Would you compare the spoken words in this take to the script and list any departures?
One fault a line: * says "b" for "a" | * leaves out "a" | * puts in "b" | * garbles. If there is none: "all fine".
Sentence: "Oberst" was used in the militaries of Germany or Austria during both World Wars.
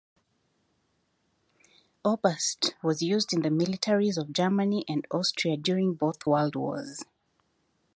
* says "and" for "or"